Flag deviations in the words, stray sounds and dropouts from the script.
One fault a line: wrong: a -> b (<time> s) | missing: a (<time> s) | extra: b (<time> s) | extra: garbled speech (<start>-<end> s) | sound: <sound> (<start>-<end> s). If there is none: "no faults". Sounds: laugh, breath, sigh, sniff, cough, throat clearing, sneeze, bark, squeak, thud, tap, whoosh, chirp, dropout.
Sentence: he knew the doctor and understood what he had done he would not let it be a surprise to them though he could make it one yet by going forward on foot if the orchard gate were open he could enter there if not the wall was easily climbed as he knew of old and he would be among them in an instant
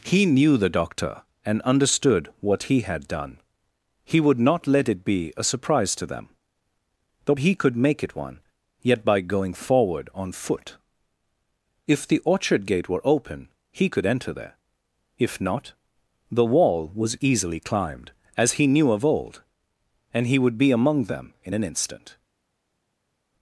no faults